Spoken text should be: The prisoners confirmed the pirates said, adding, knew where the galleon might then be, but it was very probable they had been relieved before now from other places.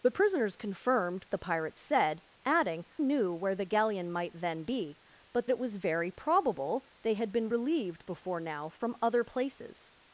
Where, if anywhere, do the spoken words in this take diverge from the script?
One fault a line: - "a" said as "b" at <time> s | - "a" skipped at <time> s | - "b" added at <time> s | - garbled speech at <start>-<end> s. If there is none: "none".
none